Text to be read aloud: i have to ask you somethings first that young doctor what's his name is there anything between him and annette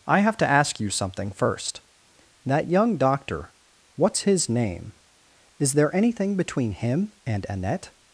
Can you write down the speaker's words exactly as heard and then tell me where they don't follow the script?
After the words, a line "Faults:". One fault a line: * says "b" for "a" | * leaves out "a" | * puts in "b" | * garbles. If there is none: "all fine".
i have to ask you something first that young doctor what's his name is there anything between him and annette
Faults:
* says "something" for "somethings"